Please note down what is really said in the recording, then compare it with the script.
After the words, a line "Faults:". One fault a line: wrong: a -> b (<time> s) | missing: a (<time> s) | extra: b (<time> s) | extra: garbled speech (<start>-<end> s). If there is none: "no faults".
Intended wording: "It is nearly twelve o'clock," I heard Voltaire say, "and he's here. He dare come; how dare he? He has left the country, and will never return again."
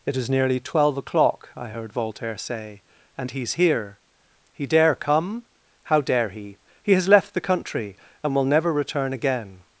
"It is nearly twelve o'clock," I heard Voltaire say, "and he's here. He dare come; how dare he? He has left the country, and will never return again."
Faults:
no faults